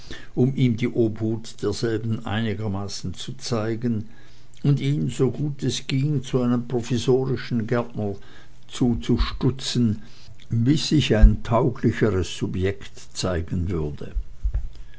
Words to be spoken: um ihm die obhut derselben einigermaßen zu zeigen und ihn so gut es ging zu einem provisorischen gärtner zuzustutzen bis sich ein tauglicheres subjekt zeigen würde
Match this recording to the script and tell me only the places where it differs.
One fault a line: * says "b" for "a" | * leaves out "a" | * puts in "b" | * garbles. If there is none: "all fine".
all fine